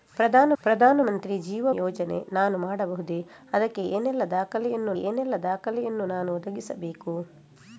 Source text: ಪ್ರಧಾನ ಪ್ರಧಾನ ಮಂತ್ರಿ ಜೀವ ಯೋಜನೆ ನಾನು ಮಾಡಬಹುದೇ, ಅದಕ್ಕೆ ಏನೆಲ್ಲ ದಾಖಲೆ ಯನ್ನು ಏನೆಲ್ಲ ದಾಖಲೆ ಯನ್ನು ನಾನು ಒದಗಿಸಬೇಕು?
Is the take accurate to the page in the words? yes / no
yes